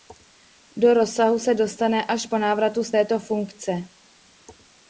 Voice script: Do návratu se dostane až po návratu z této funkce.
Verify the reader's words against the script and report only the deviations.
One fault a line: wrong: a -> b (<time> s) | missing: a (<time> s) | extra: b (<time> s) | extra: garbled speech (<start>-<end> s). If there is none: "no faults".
wrong: návratu -> rozsahu (0.9 s)